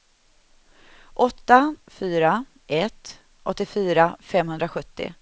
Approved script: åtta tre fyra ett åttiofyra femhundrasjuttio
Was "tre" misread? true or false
true